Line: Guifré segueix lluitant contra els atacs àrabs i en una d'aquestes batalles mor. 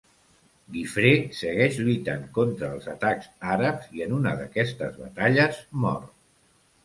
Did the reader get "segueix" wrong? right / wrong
right